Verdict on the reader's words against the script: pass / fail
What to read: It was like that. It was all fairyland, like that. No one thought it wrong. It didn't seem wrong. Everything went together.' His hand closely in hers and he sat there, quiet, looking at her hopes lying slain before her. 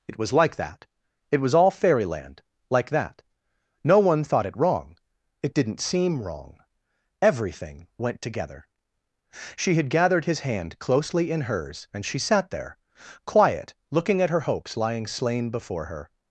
fail